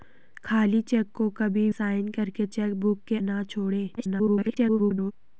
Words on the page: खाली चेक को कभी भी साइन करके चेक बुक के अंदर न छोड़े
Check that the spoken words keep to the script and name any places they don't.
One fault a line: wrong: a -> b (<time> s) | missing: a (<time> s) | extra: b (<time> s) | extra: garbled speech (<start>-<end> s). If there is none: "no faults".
missing: भी (1.7 s)
missing: अंदर (3.2 s)
extra: garbled speech (4.0-5.1 s)